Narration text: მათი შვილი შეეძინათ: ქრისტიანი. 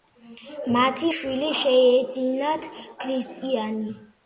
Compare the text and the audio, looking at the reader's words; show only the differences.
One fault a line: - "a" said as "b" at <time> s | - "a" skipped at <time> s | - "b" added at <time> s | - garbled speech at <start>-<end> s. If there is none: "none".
none